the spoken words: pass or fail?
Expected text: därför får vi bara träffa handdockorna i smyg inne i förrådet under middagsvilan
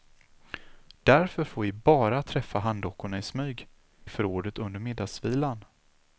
fail